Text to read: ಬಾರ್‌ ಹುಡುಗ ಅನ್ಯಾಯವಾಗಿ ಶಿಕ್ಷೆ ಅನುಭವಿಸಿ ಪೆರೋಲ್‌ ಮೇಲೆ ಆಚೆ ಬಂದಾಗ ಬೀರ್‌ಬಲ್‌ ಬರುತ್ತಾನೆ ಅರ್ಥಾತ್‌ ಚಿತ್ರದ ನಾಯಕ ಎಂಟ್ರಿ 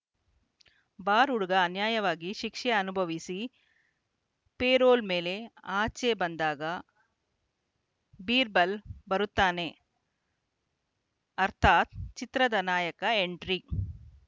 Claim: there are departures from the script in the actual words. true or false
false